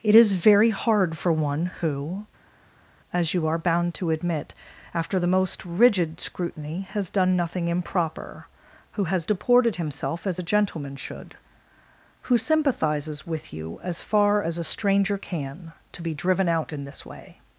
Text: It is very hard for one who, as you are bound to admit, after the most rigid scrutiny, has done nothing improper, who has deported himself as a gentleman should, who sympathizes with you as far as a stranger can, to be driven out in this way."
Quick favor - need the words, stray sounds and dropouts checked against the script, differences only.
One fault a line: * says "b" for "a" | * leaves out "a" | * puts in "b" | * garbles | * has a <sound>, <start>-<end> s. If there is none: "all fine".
all fine